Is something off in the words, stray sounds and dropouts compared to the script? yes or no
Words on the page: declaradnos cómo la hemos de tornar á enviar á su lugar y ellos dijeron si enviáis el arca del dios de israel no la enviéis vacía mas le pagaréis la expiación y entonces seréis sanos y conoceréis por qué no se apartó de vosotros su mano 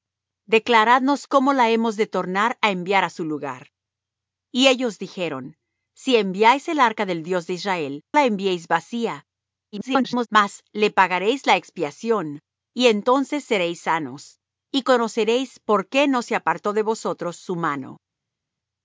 yes